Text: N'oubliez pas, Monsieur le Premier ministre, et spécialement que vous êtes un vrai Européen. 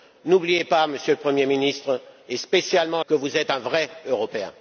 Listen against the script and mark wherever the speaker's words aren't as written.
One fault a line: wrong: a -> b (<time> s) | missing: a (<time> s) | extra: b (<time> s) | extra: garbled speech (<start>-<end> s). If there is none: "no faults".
no faults